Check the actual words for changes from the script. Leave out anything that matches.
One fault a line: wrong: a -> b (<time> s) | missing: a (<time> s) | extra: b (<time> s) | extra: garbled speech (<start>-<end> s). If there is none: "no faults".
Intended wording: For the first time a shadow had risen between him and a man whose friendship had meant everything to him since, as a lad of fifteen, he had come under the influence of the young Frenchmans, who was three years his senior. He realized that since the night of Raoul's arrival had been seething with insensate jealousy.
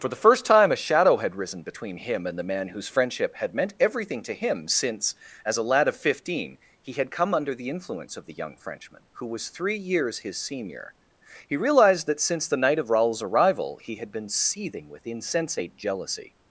wrong: a -> the (2.4 s)
wrong: Frenchmans -> Frenchman (8.6 s)
extra: he (13.8 s)